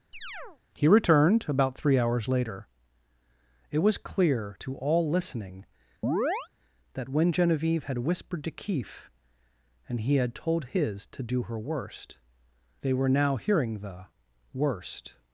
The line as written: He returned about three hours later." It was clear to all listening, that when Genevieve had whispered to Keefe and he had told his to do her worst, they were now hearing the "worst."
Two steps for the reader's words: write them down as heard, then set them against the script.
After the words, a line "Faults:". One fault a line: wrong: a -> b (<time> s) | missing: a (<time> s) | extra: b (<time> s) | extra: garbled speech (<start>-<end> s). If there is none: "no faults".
He returned about three hours later." It was clear to all listening, that when Genevieve had whispered to Keefe and he had told his to do her worst, they were now hearing the "worst."
Faults:
no faults